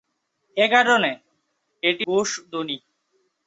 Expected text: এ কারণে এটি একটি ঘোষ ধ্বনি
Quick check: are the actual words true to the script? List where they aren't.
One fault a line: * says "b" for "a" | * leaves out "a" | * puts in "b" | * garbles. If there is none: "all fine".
* leaves out "একটি"